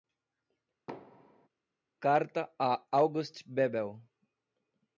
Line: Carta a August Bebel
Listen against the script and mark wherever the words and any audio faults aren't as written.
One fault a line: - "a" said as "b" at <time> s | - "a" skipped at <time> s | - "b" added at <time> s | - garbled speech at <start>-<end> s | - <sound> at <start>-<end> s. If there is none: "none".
- thud at 0.9-1.5 s